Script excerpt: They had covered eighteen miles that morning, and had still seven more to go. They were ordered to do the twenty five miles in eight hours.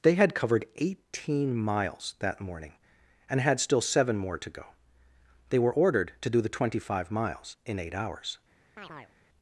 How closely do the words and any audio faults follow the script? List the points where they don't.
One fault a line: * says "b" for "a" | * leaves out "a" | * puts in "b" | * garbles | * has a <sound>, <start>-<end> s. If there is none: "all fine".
* has a chirp, 8.8-9.1 s